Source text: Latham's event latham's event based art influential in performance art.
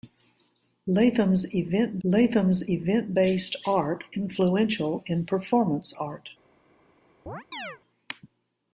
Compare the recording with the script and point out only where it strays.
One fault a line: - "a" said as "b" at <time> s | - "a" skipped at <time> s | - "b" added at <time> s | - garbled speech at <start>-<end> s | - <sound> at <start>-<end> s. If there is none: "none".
- chirp at 7.3-7.8 s